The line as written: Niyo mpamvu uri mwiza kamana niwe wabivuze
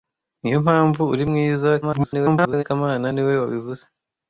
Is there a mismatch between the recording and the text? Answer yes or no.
yes